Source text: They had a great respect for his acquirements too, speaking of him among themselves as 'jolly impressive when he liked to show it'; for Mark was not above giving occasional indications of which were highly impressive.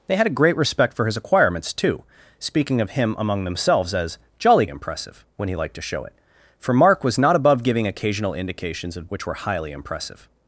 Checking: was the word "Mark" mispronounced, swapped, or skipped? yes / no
no